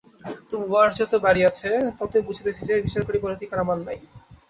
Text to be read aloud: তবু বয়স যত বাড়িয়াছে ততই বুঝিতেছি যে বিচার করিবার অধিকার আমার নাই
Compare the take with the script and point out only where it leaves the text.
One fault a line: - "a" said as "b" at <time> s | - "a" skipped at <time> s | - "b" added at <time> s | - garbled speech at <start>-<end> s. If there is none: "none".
none